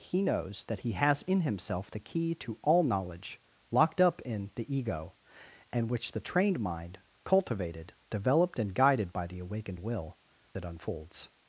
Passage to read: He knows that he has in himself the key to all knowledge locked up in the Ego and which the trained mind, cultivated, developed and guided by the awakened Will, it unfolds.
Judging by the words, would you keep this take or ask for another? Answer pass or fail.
pass